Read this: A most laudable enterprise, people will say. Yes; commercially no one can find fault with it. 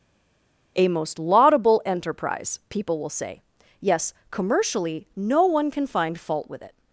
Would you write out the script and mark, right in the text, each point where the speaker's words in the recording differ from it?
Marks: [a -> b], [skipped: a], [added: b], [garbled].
A most laudable enterprise, people will say. Yes; commercially no one can find fault with it.